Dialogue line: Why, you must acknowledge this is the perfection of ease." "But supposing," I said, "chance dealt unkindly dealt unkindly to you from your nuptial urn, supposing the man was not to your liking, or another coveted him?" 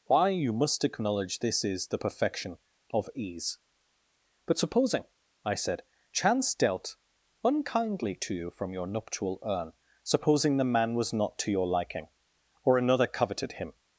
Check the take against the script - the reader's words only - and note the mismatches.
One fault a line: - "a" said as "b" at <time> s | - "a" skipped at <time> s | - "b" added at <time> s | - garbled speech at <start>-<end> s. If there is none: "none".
- "dealt unkindly" skipped at 8.2 s